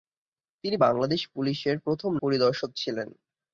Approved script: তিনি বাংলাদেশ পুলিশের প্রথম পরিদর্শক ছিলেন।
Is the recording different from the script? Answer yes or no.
no